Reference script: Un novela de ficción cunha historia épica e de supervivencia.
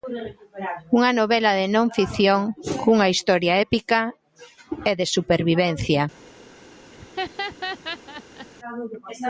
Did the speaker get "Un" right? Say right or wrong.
wrong